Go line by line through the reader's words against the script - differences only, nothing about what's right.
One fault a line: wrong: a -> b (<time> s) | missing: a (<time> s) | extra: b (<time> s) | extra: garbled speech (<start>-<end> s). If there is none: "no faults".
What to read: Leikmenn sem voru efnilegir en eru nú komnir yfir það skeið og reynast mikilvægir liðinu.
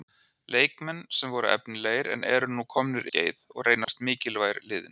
missing: yfir það (3.1 s)